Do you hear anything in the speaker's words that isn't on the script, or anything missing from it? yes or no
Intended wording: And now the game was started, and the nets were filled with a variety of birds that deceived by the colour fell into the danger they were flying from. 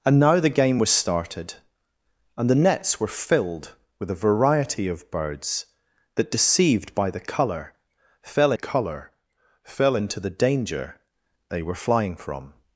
yes